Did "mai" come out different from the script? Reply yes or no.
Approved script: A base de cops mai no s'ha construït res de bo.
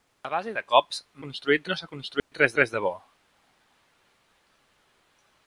yes